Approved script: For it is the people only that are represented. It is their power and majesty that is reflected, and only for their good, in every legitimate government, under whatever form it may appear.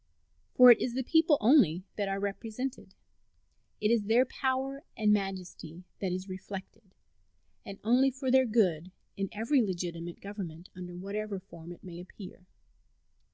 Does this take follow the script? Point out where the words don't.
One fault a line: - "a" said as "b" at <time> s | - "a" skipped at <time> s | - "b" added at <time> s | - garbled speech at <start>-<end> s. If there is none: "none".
none